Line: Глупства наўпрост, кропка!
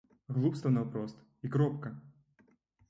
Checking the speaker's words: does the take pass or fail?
fail